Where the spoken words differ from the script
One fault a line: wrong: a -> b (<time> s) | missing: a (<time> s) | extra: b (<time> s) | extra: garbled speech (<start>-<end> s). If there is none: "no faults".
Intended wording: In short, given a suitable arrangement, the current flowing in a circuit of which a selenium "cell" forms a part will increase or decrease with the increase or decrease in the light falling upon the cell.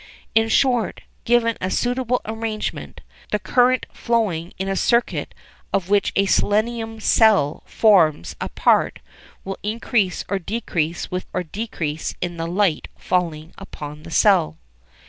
missing: the increase (11.3 s)